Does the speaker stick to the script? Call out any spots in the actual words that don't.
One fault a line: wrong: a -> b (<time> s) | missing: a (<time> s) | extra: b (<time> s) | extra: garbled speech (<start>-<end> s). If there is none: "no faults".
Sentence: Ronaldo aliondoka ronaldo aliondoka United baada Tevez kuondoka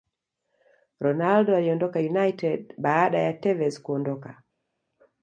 missing: ronaldo aliondoka (2.0 s)
extra: ya (3.2 s)